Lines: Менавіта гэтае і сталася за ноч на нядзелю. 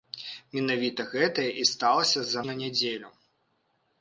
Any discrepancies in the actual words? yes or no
yes